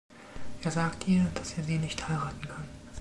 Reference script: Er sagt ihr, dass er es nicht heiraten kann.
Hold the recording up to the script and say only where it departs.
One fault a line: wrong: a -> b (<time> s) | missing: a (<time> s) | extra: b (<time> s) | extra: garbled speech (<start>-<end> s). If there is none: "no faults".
wrong: es -> sie (1.6 s)